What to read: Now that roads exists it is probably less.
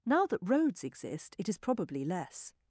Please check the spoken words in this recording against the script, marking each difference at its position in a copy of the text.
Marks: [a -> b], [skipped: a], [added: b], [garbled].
Now that roads [exists -> exist] it is probably less.